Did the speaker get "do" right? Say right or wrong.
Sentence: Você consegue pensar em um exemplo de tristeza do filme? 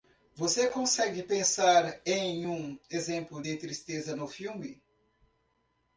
wrong